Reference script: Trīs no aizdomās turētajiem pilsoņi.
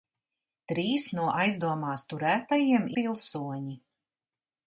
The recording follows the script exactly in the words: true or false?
true